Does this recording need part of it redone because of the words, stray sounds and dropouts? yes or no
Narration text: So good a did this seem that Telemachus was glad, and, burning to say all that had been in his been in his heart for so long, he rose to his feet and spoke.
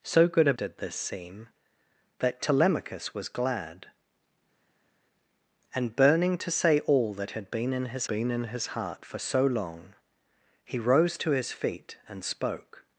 no